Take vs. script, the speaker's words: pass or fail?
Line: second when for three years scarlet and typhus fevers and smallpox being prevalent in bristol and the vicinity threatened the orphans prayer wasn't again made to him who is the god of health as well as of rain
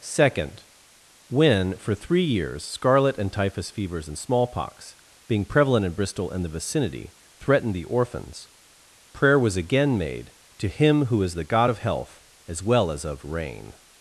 fail